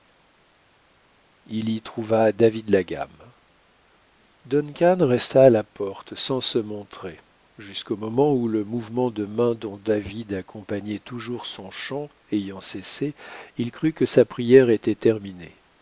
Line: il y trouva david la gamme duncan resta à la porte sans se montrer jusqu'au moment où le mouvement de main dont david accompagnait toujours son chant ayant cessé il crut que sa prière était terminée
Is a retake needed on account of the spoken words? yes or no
no